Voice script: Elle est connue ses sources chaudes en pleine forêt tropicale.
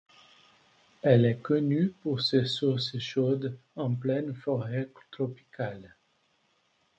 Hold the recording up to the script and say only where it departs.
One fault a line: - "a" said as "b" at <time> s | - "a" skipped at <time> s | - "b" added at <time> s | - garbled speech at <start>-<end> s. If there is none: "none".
- "pour" added at 2.0 s